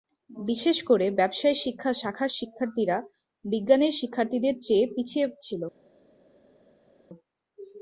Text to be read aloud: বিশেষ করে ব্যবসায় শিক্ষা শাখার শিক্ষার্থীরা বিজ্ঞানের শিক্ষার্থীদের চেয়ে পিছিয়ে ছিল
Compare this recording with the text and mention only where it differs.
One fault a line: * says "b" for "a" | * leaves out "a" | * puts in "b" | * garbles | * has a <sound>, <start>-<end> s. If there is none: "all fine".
all fine